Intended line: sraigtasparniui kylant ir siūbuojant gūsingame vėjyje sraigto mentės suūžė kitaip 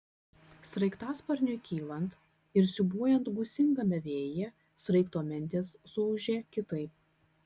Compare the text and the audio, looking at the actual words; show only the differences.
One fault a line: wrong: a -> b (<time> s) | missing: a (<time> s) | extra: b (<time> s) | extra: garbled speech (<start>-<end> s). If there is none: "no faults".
no faults